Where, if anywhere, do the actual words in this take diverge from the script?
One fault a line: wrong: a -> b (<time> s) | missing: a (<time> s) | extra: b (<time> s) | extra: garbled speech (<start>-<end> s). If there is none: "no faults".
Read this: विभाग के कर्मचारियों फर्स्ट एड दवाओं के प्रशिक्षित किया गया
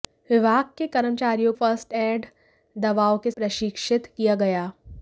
no faults